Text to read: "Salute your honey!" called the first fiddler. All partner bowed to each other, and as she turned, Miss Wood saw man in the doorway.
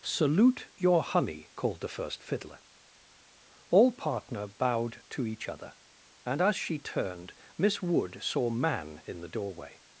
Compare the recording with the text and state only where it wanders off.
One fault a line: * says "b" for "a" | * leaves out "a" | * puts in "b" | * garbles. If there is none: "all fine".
all fine